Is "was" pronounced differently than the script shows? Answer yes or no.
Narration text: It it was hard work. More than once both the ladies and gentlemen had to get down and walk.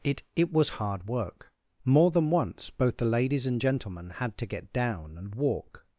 no